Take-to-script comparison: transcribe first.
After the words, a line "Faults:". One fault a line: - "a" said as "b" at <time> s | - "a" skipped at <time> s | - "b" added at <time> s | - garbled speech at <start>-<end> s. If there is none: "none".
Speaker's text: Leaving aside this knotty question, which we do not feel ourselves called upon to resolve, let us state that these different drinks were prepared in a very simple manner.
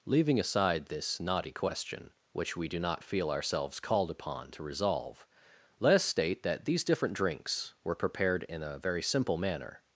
Leaving aside this knotty question, which we do not feel ourselves called upon to resolve, let us state that these different drinks were prepared in a very simple manner.
Faults:
none